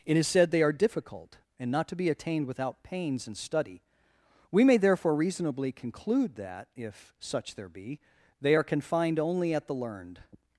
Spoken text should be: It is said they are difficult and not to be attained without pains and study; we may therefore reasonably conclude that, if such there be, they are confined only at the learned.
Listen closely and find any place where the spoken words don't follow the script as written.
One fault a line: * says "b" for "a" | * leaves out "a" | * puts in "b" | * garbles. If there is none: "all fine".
all fine